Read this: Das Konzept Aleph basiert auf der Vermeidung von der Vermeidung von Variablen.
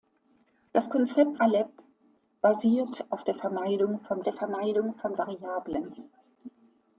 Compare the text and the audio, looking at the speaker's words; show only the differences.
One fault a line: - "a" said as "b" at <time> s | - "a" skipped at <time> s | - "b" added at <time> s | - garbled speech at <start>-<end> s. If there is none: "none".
none